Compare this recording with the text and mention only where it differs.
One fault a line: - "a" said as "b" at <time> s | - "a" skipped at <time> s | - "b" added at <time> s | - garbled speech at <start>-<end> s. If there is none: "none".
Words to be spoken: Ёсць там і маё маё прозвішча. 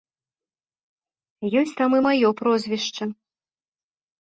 - "маё" skipped at 2.3 s